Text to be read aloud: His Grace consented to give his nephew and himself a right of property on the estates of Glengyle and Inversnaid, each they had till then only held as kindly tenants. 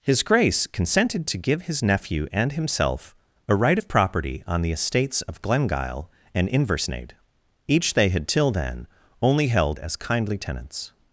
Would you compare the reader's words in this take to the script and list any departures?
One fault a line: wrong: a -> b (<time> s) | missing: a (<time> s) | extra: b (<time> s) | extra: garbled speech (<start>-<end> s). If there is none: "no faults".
no faults